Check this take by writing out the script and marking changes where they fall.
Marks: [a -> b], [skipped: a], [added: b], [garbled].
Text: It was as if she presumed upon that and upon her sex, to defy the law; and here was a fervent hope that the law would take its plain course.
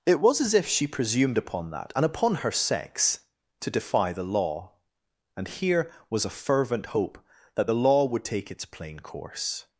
It was as if she presumed upon that and upon her sex, to defy the law; and here was a fervent hope that the law would take its plain course.